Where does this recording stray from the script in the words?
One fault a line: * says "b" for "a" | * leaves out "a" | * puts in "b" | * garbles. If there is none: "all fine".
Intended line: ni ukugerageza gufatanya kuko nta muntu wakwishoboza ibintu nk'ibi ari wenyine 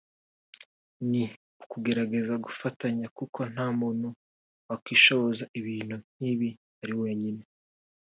all fine